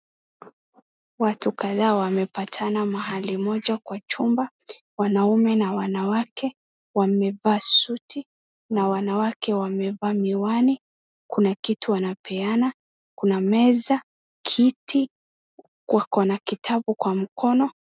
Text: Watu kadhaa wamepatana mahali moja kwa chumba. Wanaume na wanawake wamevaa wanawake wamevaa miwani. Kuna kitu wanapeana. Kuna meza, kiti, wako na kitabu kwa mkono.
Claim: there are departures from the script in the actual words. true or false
true